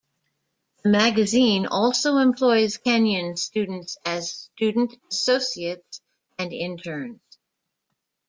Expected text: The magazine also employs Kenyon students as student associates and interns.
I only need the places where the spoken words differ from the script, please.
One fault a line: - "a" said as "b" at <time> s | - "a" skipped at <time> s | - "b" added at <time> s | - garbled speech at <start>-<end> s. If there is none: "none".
none